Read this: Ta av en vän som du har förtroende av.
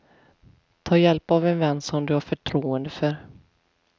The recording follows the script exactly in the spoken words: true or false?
false